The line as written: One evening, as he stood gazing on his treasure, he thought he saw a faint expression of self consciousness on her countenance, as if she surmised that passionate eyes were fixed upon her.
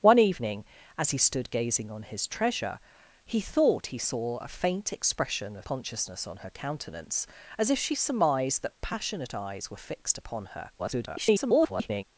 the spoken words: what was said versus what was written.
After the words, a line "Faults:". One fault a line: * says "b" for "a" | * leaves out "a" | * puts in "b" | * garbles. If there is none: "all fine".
One evening, as he stood gazing on his treasure, he thought he saw a faint expression of consciousness on her countenance, as if she surmised that passionate eyes were fixed upon her. [garbled]
Faults:
* leaves out "self"
* garbles